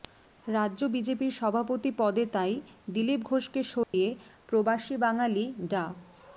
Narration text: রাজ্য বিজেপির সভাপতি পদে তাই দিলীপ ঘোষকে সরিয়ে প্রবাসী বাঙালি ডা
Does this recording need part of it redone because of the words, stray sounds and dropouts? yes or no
yes